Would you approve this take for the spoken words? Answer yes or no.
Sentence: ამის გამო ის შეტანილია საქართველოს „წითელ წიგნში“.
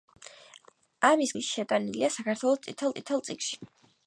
no